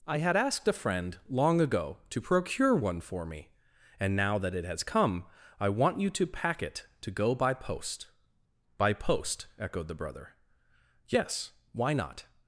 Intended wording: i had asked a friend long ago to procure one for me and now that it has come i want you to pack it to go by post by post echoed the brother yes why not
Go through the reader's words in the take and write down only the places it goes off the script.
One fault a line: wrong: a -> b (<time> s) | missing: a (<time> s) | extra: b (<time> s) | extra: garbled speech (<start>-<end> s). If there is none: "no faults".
no faults